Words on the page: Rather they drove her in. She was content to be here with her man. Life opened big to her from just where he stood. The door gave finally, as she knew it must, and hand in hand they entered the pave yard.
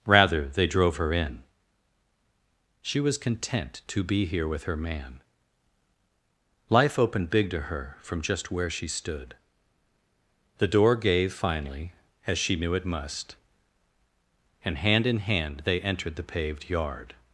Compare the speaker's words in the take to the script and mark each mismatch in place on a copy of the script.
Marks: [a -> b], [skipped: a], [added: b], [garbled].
Rather they drove her in. She was content to be here with her man. Life opened big to her from just where [he -> she] stood. The door gave finally, as she knew it must, and hand in hand they entered the [pave -> paved] yard.